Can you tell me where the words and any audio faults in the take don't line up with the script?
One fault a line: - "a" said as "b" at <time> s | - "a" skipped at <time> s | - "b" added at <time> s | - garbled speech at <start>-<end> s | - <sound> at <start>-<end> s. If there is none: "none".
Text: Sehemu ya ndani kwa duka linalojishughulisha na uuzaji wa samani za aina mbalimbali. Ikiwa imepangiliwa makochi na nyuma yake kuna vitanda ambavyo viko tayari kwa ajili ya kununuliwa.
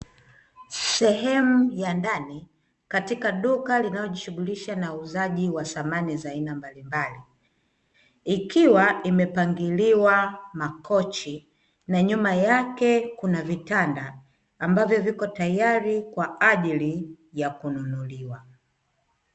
- "kwa" said as "katika" at 2.9 s